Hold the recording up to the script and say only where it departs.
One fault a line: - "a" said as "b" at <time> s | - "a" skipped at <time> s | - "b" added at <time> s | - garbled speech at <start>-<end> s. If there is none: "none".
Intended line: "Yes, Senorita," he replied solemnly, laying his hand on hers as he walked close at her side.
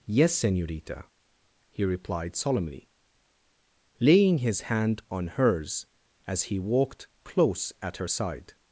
none